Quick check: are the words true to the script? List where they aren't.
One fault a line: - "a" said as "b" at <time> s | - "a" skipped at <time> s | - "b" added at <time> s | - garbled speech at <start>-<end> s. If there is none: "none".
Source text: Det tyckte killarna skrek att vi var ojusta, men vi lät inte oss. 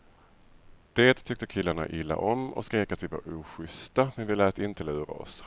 - "illa om och" added at 1.9 s
- "lura" added at 4.8 s